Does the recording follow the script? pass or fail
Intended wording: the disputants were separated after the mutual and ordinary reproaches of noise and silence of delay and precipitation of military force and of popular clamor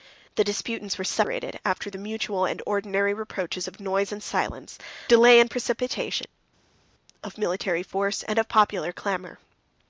fail